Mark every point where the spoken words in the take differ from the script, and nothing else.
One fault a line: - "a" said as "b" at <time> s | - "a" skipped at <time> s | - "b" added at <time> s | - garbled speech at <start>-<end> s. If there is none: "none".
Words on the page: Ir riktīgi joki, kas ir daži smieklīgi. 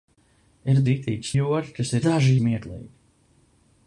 none